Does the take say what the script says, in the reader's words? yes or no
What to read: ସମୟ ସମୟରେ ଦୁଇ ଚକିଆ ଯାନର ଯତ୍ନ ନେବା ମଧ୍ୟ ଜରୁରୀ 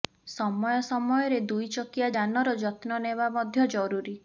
yes